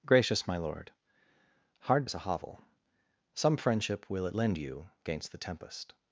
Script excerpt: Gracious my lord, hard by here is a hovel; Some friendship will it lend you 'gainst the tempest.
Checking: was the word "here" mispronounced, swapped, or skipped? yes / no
yes